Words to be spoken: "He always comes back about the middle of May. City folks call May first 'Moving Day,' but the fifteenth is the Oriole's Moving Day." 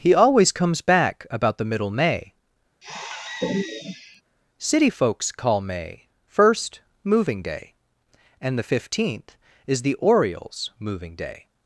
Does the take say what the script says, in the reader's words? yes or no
no